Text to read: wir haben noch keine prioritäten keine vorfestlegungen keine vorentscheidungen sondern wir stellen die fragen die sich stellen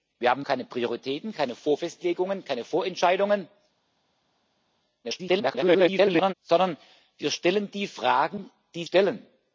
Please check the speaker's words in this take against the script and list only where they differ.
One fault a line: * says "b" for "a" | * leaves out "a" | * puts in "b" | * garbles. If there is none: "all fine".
* leaves out "noch"
* garbles
* leaves out "sich"